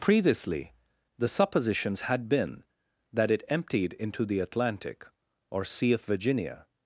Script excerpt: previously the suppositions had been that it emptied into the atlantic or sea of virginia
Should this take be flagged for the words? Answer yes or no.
no